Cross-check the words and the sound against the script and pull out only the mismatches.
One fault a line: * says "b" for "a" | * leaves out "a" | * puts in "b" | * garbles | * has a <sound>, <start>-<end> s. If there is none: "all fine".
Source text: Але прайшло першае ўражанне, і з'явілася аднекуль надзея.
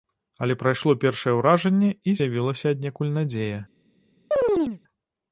* has a chirp, 4.3-4.8 s